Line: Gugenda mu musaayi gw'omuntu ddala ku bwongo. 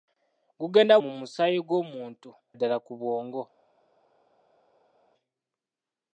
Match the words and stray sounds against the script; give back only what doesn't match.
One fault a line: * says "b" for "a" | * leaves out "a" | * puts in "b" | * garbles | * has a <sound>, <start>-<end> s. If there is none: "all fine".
all fine